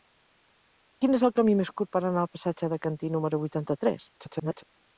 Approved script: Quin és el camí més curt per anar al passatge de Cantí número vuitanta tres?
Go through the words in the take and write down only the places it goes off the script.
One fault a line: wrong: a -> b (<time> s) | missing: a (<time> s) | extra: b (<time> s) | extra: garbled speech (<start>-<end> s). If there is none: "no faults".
extra: garbled speech (4.2-4.6 s)